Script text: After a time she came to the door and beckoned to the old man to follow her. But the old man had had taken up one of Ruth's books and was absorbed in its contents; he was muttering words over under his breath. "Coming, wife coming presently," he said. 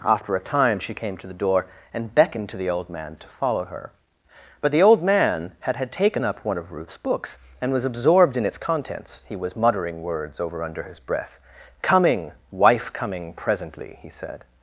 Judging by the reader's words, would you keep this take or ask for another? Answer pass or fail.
pass